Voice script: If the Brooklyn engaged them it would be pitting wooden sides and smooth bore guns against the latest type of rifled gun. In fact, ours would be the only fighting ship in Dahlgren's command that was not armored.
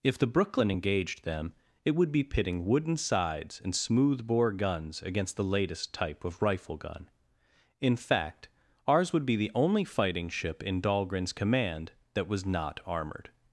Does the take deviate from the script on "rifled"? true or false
true